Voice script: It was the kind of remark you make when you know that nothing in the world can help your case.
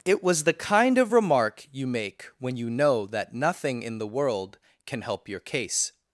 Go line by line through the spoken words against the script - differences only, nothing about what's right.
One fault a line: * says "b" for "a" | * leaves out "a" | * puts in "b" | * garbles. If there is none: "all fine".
all fine